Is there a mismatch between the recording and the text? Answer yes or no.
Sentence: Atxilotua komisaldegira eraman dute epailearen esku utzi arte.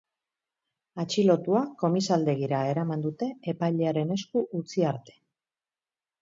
no